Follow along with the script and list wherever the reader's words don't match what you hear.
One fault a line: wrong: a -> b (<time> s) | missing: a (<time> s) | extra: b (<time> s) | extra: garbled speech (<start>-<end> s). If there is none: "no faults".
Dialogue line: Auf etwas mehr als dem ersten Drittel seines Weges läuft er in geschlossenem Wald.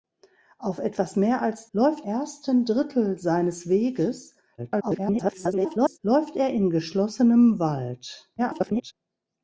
wrong: dem -> läuft (1.7 s)
extra: garbled speech (4.6-6.0 s)
extra: garbled speech (8.4-8.9 s)